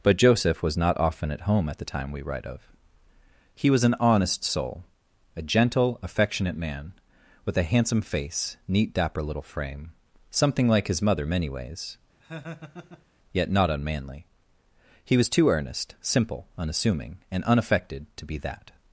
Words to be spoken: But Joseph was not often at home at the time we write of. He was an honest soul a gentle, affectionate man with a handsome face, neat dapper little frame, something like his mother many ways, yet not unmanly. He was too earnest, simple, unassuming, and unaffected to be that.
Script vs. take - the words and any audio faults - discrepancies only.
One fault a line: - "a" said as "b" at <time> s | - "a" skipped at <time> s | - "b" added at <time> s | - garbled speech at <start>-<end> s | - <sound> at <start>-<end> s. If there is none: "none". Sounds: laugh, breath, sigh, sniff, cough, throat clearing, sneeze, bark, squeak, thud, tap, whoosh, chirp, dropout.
- laugh at 12.2-13.0 s